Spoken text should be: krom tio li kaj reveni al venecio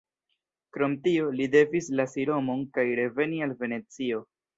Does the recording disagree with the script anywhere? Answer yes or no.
yes